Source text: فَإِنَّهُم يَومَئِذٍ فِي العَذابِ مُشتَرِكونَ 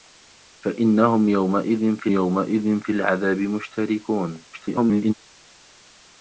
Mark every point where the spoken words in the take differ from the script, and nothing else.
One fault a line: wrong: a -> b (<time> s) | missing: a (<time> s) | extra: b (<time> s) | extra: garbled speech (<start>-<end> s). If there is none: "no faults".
extra: يَومَئِذٍ فِي (2.1 s)
extra: garbled speech (4.5-5.1 s)